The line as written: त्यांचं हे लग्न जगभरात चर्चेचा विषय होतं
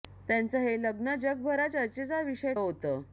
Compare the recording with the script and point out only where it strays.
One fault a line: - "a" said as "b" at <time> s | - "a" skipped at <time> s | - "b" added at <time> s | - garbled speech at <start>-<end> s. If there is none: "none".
none